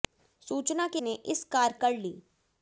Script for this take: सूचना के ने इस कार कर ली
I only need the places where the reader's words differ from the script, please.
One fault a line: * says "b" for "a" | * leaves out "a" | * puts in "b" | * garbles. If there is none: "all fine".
all fine